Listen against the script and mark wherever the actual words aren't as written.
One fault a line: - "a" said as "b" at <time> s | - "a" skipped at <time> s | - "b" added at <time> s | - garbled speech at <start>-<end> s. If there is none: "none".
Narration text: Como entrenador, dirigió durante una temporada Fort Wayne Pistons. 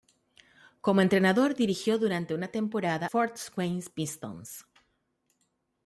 none